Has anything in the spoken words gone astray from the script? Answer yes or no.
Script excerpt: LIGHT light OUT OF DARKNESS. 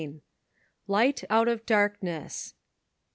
yes